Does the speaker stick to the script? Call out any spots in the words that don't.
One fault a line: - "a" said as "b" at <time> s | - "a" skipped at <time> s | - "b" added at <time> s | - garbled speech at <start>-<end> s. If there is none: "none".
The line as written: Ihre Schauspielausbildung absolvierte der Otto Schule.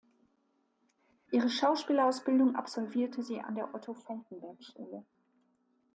- "sie an" added at 3.2 s
- "Falckenberg" added at 3.9 s